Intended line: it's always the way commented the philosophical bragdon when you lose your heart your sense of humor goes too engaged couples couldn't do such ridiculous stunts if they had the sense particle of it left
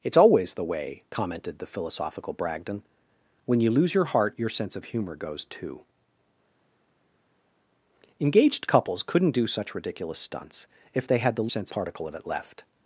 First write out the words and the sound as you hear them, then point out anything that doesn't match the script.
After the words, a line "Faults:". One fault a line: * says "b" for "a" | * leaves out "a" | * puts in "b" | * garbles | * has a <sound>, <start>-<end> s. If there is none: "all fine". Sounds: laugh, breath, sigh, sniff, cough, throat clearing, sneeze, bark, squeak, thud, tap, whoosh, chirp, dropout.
it's always the way commented the philosophical bragdon when you lose your heart your sense of humor goes too engaged couples couldn't do such ridiculous stunts if they had the sense particle of it left
Faults:
all fine